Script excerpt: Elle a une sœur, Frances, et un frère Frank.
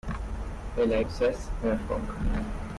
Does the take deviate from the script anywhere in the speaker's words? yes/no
yes